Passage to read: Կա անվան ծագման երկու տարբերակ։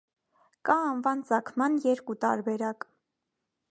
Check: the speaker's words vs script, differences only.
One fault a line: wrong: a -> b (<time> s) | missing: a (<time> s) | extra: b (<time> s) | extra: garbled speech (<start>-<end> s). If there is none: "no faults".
no faults